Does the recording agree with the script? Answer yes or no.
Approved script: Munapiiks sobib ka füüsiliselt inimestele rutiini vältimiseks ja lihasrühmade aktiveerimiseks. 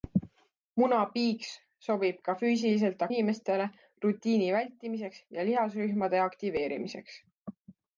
yes